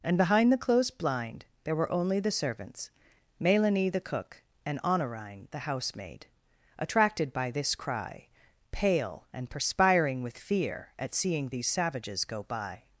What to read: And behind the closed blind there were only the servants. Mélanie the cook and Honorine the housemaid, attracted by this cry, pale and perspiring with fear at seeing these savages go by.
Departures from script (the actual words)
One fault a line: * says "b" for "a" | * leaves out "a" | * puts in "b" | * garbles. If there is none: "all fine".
all fine